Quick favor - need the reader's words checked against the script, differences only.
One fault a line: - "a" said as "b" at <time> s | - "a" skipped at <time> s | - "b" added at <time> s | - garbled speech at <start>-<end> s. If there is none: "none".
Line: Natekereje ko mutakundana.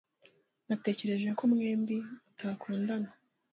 - "mwembi" added at 1.5 s